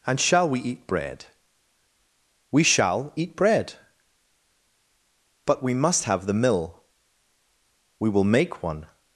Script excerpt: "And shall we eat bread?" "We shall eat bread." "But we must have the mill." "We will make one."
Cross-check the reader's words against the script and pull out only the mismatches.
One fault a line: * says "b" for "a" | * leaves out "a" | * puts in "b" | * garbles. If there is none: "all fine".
all fine